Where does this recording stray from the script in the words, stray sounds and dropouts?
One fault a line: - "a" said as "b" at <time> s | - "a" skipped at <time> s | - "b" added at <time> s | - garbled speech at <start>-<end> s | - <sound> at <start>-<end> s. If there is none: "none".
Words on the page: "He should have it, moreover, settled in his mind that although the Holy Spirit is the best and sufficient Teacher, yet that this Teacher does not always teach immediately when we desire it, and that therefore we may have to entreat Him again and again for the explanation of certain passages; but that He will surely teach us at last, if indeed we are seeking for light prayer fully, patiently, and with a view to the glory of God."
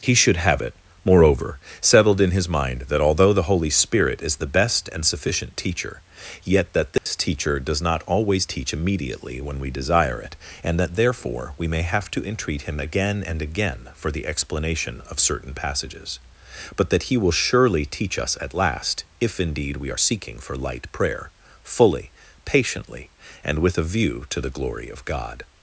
- dropout at 7.0-7.1 s